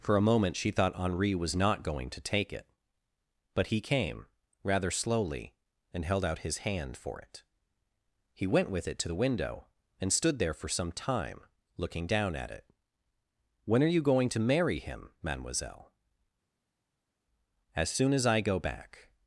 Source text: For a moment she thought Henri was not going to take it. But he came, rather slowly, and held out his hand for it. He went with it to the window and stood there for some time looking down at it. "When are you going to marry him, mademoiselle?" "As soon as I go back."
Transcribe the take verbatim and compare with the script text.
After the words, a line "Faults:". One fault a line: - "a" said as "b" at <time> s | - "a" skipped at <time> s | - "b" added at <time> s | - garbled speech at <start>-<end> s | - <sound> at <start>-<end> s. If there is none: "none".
For a moment she thought Henri was not going to take it. But he came, rather slowly, and held out his hand for it. He went with it to the window and stood there for some time looking down at it. "When are you going to marry him, mademoiselle?" "As soon as I go back."
Faults:
none